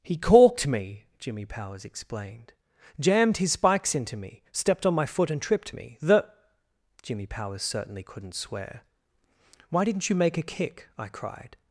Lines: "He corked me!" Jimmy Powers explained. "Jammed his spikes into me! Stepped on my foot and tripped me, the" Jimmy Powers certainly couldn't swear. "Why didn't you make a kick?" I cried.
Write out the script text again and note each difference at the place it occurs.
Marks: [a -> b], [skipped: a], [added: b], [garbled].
"He corked me!" Jimmy Powers explained. "Jammed his spikes into me! Stepped on my foot and tripped me, the" Jimmy Powers certainly couldn't swear. "Why didn't you make a kick?" I cried.